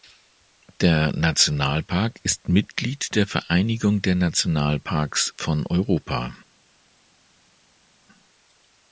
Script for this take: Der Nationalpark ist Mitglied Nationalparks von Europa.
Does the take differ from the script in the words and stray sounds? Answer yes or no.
yes